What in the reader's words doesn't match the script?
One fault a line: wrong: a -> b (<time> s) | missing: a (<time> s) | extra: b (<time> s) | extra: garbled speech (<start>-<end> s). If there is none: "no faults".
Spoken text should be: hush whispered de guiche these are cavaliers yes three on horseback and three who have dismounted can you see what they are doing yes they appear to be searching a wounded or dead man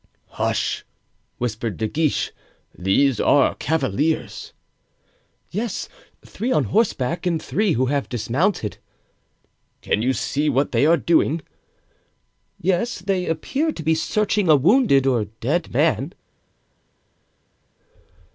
no faults